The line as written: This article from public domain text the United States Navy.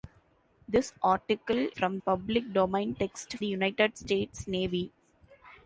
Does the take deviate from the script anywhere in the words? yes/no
no